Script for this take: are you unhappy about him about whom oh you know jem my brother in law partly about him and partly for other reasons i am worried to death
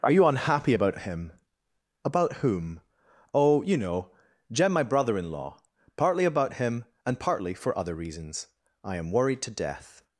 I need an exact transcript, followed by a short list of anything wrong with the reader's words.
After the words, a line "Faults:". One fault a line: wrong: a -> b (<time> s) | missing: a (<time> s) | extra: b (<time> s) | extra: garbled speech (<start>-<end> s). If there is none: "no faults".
are you unhappy about him about whom oh you know jem my brother in law partly about him and partly for other reasons i am worried to death
Faults:
no faults